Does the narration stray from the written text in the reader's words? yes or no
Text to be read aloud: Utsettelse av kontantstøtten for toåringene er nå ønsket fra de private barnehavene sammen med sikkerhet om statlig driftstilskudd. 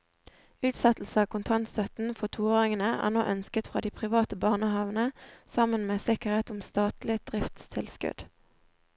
no